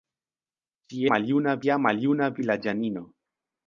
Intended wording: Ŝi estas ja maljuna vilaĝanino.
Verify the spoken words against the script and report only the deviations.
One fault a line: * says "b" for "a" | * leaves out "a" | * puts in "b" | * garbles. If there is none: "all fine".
* says "maljuna" for "estas"